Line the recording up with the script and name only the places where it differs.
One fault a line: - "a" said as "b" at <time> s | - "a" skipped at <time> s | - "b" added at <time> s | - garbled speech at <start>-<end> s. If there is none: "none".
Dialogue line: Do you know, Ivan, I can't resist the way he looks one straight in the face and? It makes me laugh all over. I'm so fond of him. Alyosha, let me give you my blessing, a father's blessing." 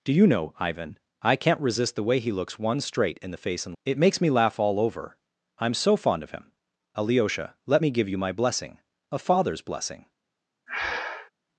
none